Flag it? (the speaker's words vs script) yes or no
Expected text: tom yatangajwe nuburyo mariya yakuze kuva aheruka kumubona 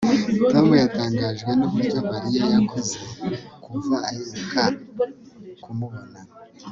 no